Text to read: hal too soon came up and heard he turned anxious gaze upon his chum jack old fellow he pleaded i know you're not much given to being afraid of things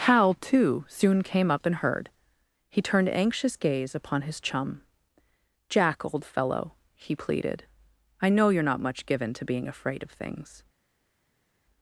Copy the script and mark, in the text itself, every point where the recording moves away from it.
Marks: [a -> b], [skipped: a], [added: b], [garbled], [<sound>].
hal too soon came up and heard he turned anxious gaze upon his chum jack old fellow he pleaded i know you're not much given to being afraid of things